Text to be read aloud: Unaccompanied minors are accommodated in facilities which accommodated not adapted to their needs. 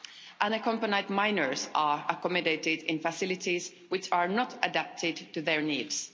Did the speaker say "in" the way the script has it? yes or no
yes